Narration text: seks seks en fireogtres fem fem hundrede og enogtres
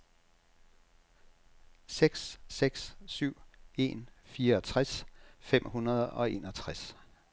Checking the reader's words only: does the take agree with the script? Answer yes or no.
no